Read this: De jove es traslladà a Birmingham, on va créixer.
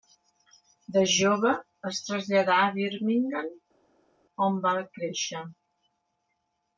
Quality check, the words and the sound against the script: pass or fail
pass